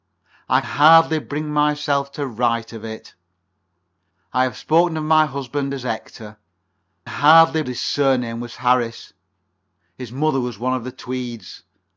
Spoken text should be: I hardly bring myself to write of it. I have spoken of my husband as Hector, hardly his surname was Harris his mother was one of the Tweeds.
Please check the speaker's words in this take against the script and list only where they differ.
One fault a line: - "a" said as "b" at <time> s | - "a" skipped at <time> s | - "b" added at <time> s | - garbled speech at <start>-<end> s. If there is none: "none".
none